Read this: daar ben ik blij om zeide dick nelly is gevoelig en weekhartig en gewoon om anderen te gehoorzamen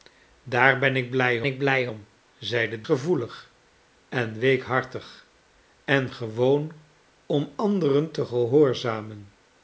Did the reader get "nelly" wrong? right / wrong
wrong